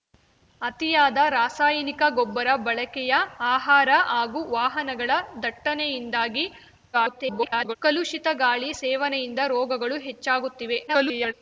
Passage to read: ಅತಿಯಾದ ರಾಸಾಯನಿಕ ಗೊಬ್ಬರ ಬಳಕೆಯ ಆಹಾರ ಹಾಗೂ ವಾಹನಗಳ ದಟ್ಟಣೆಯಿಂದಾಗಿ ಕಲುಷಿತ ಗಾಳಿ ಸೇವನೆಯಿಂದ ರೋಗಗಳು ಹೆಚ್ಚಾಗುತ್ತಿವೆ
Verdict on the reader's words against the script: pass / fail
fail